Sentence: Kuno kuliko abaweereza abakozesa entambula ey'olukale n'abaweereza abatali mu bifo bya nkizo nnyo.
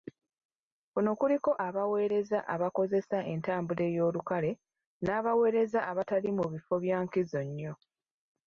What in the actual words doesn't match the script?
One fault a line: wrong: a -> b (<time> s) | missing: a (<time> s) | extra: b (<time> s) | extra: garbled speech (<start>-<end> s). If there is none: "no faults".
no faults